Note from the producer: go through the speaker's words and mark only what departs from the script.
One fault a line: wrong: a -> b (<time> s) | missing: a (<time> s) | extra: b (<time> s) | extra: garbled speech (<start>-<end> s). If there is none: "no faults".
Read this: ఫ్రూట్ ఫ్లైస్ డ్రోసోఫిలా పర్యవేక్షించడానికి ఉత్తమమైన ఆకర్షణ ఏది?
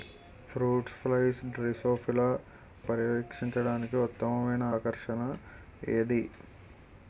no faults